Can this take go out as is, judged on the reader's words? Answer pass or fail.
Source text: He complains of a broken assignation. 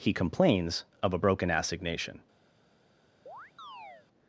pass